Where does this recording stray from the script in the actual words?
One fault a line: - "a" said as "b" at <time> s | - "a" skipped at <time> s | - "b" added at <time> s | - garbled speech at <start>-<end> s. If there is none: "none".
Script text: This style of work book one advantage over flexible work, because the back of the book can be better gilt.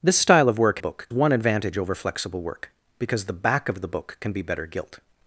none